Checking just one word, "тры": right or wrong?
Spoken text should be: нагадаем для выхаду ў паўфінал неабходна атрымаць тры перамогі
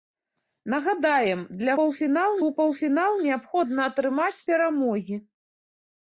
wrong